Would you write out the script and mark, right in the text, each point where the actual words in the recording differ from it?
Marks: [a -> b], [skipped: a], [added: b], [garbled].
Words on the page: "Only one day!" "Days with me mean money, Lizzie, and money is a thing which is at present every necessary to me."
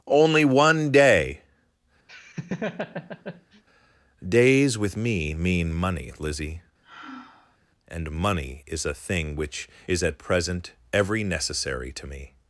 "Only one day!" "Days with me mean money, Lizzie, and money is a thing which is at present every necessary to me."